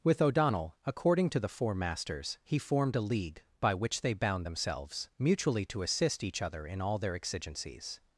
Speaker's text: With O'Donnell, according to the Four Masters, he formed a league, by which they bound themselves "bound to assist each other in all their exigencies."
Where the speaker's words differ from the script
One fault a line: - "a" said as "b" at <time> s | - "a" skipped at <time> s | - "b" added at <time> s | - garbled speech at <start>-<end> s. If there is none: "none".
- "bound" said as "mutually" at 5.2 s